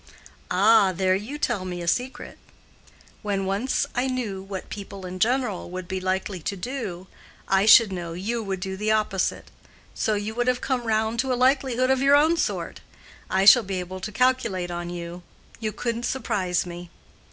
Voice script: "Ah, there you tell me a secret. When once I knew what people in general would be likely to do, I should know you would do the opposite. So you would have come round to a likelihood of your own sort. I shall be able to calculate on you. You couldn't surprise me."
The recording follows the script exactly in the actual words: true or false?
true